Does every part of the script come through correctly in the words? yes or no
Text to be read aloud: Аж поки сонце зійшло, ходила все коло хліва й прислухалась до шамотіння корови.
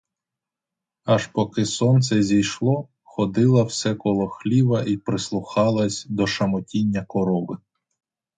yes